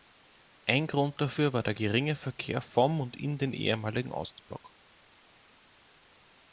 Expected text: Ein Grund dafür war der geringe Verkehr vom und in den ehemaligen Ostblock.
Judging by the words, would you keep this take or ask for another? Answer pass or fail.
pass